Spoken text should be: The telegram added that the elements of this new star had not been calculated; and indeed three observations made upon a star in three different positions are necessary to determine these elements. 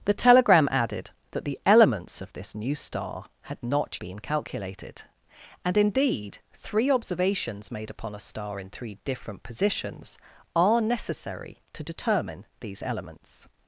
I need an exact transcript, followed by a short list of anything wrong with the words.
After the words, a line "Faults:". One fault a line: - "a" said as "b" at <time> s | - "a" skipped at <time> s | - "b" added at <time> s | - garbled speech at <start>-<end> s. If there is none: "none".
The telegram added that the elements of this new star had not been calculated; and indeed three observations made upon a star in three different positions are necessary to determine these elements.
Faults:
none